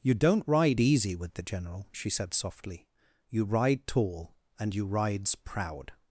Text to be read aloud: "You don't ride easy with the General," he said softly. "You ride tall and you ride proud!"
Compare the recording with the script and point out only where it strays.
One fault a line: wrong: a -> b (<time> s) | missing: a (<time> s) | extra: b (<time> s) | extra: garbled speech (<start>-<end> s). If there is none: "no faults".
wrong: he -> she (1.9 s)
wrong: ride -> rides (4.8 s)